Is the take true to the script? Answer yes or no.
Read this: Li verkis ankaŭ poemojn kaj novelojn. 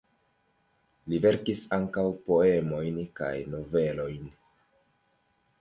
yes